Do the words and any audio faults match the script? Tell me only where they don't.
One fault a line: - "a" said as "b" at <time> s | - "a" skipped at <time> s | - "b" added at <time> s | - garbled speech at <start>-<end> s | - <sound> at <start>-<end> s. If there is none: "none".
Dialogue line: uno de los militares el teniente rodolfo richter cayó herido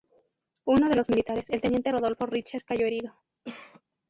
- cough at 3.4-3.8 s